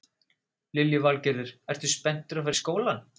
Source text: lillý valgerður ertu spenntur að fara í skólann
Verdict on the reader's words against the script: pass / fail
pass